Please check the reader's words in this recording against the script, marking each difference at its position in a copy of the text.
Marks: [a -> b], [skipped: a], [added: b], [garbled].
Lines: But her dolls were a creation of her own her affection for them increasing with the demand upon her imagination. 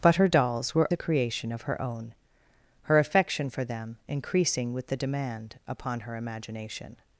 But her dolls were a creation of her own her affection for them increasing with the demand upon her imagination.